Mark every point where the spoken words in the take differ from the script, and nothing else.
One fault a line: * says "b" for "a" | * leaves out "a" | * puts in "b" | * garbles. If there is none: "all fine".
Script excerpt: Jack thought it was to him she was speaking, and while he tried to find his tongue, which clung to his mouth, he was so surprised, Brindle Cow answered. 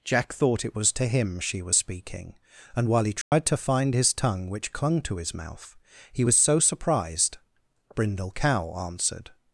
all fine